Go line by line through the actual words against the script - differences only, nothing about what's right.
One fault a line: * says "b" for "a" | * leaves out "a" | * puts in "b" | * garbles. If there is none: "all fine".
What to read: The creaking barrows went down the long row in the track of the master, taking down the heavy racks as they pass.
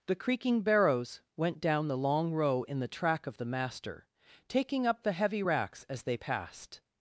* says "up" for "down"
* says "passed" for "pass"